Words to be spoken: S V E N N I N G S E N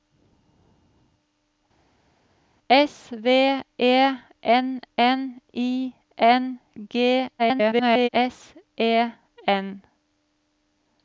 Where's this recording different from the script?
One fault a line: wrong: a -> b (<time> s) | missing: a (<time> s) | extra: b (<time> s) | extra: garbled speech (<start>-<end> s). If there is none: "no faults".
extra: garbled speech (7.4-8.1 s)